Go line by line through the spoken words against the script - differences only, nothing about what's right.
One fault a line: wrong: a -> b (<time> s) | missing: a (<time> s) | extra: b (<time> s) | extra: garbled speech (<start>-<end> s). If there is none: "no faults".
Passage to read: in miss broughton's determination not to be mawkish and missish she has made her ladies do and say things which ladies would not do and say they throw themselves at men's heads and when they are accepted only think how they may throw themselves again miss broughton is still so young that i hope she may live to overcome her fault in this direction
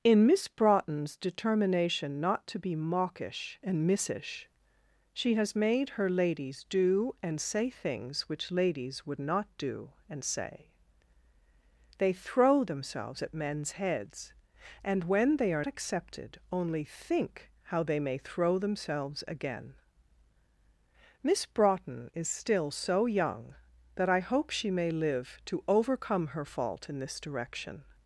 no faults